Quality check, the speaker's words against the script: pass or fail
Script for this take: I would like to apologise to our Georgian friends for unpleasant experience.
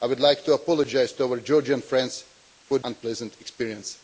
pass